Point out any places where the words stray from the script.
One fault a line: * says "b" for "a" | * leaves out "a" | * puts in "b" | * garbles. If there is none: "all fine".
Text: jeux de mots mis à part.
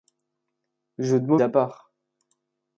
* leaves out "mis"